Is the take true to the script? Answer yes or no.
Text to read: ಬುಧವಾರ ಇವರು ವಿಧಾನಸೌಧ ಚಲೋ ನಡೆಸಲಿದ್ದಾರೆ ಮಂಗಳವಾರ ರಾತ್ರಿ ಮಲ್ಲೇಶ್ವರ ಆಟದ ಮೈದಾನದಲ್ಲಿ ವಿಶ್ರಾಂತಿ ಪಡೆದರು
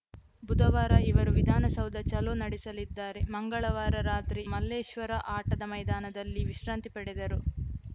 yes